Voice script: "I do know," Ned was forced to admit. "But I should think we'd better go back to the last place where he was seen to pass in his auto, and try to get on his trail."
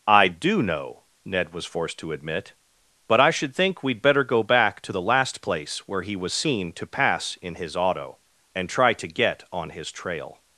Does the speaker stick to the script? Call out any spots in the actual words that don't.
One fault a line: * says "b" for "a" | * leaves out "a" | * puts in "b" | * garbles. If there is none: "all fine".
all fine